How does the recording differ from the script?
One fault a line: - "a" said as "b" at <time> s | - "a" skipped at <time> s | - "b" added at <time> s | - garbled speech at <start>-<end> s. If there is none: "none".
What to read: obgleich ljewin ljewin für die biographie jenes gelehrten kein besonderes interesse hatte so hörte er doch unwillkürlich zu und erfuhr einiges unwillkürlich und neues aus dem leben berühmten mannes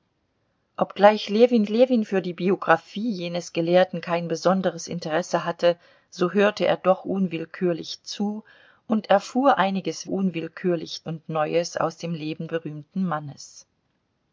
none